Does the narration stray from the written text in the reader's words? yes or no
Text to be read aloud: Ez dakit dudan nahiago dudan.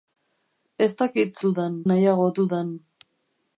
no